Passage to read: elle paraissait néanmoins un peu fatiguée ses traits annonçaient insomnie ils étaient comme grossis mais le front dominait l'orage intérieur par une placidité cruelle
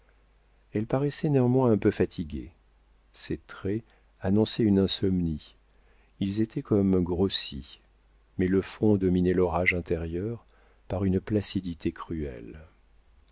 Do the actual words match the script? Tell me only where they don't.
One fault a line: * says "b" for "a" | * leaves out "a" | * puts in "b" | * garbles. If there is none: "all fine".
* puts in "une"